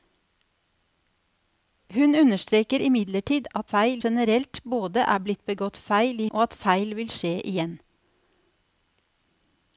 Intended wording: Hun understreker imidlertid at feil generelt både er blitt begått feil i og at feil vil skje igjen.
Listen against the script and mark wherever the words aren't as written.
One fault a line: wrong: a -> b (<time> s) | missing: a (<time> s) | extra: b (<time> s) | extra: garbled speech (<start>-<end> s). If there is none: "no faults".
no faults